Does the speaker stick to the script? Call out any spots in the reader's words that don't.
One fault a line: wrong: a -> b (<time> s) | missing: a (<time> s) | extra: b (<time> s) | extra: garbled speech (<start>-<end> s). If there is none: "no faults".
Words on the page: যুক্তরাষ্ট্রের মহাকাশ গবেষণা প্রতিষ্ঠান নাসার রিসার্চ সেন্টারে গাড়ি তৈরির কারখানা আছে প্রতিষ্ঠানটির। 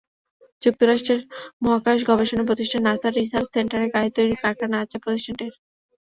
no faults